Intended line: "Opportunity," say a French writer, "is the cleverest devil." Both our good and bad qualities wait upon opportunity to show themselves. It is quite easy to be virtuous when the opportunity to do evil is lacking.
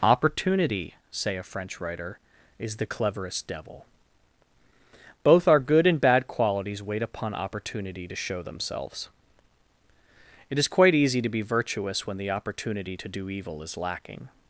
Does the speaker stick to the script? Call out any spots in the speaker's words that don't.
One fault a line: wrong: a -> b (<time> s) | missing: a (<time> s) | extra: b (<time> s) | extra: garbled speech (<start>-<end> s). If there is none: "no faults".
no faults